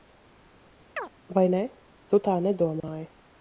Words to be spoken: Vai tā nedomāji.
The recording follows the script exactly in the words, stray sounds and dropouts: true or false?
false